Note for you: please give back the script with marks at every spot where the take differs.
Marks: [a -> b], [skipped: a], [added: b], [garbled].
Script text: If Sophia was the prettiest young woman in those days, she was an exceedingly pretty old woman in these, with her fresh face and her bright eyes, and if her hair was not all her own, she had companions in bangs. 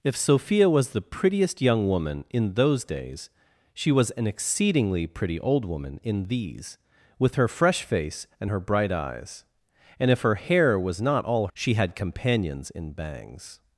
If Sophia was the prettiest young woman in those days, she was an exceedingly pretty old woman in these, with her fresh face and her bright eyes, and if her hair was not all [skipped: her own,] she had companions in bangs.